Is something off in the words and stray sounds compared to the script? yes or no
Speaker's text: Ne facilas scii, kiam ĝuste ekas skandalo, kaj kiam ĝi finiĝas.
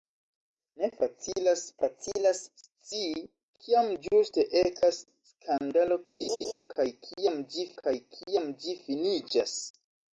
yes